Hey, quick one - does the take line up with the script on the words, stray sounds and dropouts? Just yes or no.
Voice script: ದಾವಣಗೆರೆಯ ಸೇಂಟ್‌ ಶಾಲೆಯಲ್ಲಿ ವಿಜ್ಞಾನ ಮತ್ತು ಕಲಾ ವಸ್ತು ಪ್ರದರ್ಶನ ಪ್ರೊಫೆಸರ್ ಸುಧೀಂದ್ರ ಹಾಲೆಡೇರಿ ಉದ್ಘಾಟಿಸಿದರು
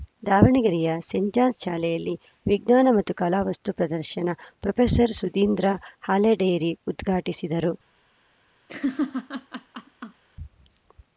no